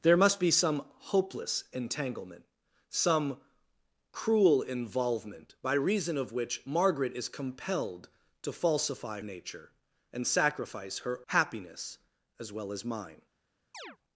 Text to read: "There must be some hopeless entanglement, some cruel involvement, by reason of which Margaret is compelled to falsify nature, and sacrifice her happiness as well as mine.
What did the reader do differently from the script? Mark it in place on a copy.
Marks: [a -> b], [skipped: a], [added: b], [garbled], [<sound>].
"There must be some hopeless entanglement, some cruel involvement, by reason of which Margaret is compelled to falsify nature, and sacrifice her happiness as well as mine. [chirp]